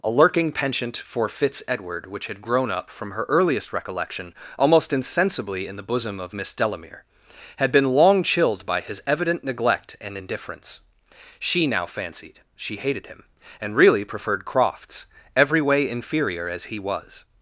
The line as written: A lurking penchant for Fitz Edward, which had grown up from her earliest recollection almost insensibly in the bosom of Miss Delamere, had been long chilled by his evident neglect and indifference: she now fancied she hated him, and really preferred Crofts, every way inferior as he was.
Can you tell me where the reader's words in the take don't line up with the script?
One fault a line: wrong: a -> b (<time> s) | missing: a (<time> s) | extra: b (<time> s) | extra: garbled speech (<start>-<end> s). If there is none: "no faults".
no faults